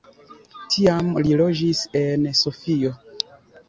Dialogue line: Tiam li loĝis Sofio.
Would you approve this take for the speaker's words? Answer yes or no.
no